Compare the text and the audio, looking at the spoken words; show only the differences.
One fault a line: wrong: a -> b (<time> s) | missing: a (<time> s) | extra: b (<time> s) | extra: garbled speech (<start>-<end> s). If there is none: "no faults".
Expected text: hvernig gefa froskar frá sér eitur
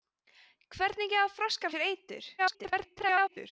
missing: frá (1.8 s)
extra: garbled speech (2.4-3.5 s)